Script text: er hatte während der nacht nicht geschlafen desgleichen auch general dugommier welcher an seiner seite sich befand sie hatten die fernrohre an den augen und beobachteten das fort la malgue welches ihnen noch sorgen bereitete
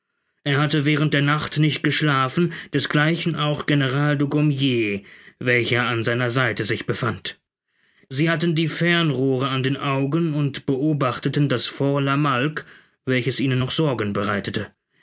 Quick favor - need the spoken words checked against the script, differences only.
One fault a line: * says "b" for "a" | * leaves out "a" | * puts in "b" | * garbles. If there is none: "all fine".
all fine